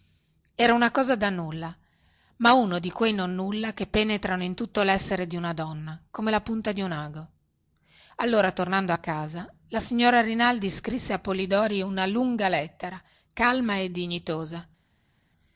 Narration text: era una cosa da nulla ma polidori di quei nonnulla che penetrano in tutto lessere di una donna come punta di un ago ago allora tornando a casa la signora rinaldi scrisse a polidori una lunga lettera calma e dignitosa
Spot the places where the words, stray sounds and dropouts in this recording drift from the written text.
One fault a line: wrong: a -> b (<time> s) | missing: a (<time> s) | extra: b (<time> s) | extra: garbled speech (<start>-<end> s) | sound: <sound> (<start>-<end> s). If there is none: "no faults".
wrong: polidori -> uno (2.5 s)
extra: la (6.3 s)
missing: ago (7.3 s)